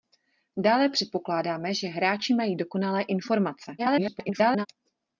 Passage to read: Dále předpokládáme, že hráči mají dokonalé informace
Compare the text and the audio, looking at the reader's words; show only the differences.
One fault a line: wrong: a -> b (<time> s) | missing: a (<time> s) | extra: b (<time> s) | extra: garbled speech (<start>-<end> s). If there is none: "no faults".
extra: garbled speech (3.8-4.7 s)